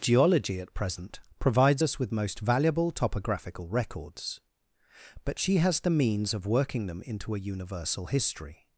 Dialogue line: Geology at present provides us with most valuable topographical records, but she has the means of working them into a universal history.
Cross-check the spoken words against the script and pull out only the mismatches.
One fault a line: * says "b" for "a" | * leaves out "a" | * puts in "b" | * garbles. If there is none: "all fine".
all fine